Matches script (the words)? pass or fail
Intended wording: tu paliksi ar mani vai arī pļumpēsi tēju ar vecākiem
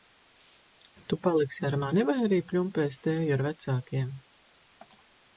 pass